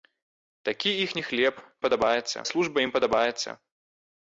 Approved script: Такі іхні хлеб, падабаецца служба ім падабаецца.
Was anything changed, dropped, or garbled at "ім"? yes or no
no